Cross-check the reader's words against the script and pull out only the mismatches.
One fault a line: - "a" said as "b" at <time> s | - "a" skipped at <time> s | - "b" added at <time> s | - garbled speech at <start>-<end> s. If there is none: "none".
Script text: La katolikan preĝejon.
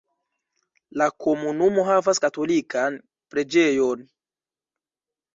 - "komunumo havas" added at 1.2 s